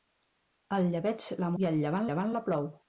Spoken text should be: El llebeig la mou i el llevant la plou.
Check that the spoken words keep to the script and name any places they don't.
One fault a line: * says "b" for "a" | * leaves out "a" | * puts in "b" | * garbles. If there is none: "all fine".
* leaves out "mou"
* puts in "llevant"